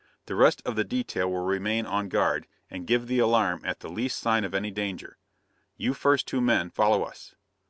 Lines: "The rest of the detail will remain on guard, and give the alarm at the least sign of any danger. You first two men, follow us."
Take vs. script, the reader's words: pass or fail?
pass